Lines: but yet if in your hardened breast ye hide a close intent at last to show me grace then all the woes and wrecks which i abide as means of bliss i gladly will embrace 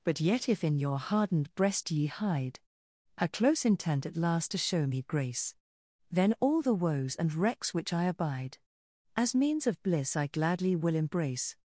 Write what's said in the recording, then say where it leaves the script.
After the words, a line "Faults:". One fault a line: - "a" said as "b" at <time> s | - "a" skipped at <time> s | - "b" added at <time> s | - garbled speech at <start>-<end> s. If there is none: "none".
but yet if in your hardened breast ye hide a close intent at last to show me grace then all the woes and wrecks which i abide as means of bliss i gladly will embrace
Faults:
none